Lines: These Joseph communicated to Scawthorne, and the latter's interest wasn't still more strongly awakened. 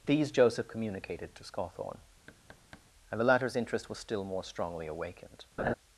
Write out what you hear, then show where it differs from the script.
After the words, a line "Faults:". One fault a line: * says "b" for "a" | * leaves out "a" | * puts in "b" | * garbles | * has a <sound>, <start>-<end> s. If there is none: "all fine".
These Joseph communicated to Scawthorne, and the latter's interest was still more strongly awakened.
Faults:
* has a thud, 2.3-2.9 s
* says "was" for "wasn't"
* has a laugh, 5.6-5.7 s